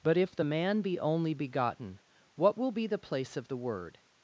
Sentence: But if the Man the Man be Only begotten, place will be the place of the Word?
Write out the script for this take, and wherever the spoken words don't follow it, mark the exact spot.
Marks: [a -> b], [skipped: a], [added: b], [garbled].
But if the Man [skipped: the Man] be Only begotten, [place -> what] will be the place of the Word?